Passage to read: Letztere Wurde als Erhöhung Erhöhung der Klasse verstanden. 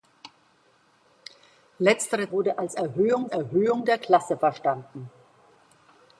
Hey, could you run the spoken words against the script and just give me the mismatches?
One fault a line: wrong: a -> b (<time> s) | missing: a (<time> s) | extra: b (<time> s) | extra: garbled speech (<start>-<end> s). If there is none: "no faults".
no faults